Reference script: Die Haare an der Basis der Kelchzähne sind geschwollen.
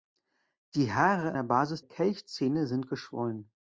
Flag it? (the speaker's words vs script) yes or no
yes